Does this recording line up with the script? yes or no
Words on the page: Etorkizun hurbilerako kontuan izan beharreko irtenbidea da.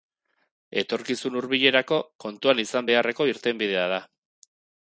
yes